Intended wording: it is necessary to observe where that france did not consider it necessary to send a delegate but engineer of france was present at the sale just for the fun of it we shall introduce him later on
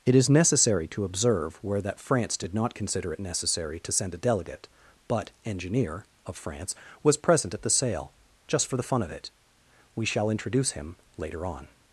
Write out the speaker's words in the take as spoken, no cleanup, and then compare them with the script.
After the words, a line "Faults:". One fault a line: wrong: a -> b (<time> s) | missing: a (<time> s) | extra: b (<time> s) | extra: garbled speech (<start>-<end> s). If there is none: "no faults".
it is necessary to observe where that france did not consider it necessary to send a delegate but engineer of france was present at the sale just for the fun of it we shall introduce him later on
Faults:
no faults